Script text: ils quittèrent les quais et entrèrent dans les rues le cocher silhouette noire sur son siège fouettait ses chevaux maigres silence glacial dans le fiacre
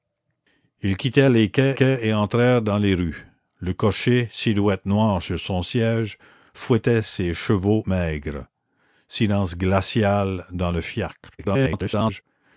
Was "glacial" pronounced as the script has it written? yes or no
yes